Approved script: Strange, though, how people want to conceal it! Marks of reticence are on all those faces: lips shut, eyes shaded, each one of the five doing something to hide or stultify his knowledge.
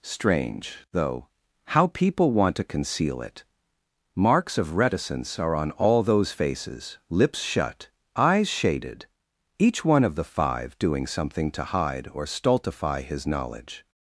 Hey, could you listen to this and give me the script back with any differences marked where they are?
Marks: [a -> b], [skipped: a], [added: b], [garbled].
Strange, though, how people want to conceal it! Marks of reticence are on all those faces: lips shut, eyes shaded, each one of the five doing something to hide or stultify his knowledge.